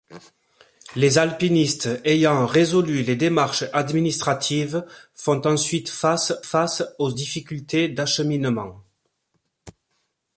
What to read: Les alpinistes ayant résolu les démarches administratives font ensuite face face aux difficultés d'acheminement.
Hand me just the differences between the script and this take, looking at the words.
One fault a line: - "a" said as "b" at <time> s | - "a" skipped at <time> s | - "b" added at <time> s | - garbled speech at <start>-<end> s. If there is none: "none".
none